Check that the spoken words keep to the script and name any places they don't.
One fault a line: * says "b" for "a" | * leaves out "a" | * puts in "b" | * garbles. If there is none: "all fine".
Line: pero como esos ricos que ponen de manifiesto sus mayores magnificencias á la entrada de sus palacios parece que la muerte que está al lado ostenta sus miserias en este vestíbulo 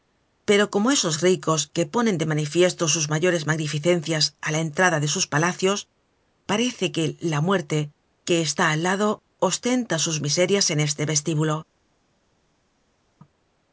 all fine